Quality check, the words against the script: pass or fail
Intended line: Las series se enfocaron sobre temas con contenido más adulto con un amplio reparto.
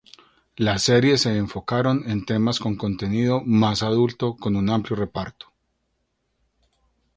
fail